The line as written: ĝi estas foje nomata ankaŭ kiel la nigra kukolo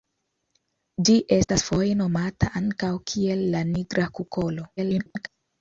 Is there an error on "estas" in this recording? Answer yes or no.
no